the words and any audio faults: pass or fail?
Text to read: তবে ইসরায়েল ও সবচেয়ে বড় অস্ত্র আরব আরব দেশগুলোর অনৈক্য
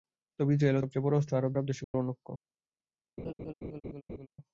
fail